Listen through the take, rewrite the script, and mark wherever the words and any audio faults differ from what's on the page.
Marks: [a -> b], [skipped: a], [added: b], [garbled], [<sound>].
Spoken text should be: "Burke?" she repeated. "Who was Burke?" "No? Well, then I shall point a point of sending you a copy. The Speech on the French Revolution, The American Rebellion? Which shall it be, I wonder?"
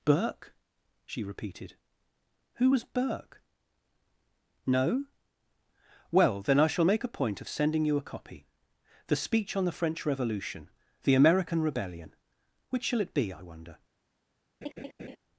"Burke?" she repeated. "Who was Burke?" "No? Well, then I shall [point -> make] a point of sending you a copy. The Speech on the French Revolution, The American Rebellion? Which shall it be, I wonder?" [laugh]